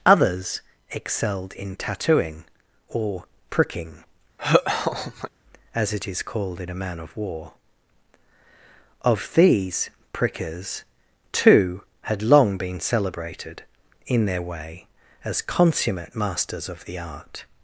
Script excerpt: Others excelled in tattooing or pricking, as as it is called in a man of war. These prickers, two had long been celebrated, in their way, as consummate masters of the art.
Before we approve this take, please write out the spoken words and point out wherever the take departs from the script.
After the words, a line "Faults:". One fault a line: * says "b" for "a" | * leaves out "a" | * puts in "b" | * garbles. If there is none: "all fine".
Others excelled in tattooing or pricking, as it is called in a man of war. Of these prickers, two had long been celebrated, in their way, as consummate masters of the art.
Faults:
* leaves out "as"
* puts in "Of"